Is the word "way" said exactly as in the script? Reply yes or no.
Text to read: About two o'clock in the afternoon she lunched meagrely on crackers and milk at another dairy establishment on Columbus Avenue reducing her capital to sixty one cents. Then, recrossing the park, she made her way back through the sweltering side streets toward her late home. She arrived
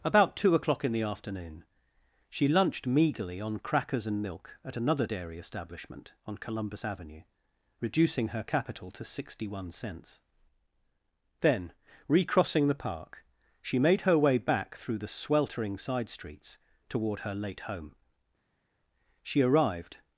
yes